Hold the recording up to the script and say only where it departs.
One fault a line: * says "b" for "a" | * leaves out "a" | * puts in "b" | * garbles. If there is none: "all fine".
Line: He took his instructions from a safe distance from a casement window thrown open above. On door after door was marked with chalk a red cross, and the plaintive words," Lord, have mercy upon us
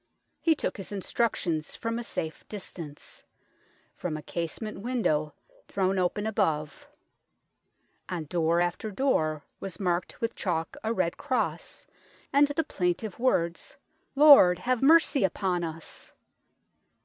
all fine